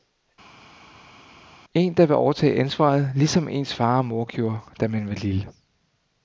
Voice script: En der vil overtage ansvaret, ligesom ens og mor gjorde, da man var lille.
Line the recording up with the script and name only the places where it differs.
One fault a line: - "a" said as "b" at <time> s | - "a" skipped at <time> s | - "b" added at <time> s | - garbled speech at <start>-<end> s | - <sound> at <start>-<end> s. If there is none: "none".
- "far" added at 3.7 s